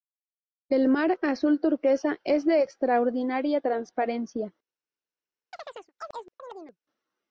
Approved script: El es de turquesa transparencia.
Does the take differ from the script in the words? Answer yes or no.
yes